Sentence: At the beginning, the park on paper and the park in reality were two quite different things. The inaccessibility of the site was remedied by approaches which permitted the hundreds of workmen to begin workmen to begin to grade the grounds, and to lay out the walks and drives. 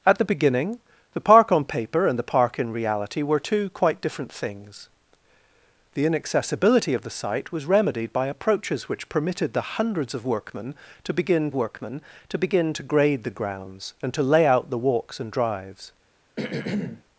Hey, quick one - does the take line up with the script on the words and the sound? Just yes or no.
no